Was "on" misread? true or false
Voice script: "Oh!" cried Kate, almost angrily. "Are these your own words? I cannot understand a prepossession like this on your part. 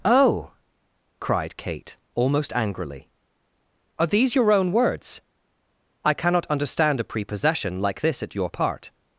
true